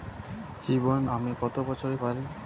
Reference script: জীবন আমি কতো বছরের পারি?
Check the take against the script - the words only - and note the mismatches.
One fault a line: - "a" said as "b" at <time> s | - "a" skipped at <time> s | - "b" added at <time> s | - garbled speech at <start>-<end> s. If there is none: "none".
none